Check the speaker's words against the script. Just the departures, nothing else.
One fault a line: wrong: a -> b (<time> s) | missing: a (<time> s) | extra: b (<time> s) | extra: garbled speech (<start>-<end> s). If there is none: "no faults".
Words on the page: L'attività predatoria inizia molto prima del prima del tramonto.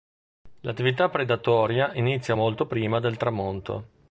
missing: prima del (3.1 s)